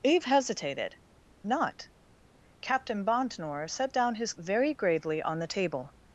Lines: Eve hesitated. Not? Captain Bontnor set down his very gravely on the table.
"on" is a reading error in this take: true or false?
false